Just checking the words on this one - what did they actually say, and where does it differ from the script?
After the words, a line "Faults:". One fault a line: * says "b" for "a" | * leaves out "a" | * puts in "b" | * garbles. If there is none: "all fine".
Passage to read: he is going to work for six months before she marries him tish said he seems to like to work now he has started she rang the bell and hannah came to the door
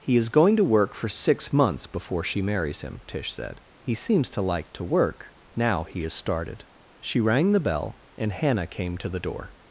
he is going to work for six months before she marries him tish said he seems to like to work now he has started she rang the bell and hannah came to the door
Faults:
all fine